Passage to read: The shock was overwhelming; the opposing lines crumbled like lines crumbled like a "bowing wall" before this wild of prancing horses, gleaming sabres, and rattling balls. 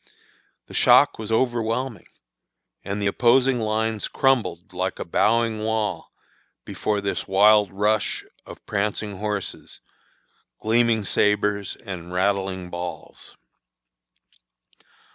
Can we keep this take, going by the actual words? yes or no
no